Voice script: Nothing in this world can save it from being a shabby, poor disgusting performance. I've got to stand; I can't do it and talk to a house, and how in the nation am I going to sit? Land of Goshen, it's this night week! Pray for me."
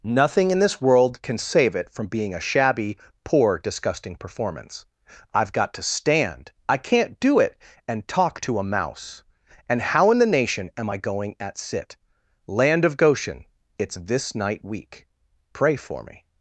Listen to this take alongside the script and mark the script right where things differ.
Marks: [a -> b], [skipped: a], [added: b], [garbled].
Nothing in this world can save it from being a shabby, poor disgusting performance. I've got to stand; I can't do it and talk to a [house, -> mouse] and how in the nation am I going [to -> at] sit? Land of Goshen, it's this night week! Pray for me."